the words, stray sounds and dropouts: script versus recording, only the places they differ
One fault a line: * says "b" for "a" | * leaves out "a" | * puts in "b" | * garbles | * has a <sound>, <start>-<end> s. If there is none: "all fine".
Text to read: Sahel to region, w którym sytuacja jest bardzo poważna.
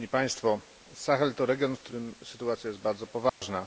* has a dropout, 3.3-3.4 s